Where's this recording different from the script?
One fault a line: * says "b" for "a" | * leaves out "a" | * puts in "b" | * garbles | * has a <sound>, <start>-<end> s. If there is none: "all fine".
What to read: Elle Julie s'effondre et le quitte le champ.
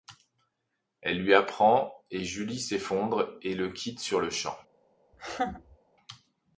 * puts in "lui apprend et"
* puts in "sur"
* has a laugh, 5.1-5.8 s